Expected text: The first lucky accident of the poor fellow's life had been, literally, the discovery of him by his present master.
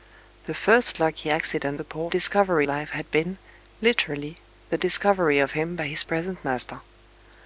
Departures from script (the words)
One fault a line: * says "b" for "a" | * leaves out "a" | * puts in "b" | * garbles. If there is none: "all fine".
* leaves out "of"
* says "discovery" for "fellow's"